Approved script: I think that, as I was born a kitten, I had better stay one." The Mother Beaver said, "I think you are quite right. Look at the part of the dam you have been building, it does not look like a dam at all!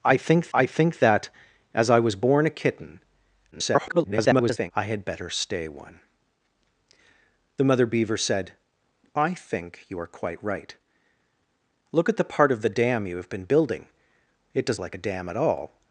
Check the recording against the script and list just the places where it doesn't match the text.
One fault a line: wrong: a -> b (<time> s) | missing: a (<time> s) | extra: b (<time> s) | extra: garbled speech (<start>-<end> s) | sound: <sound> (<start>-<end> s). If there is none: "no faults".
extra: I think (0.5 s)
extra: garbled speech (3.5-4.7 s)
missing: not look (14.8 s)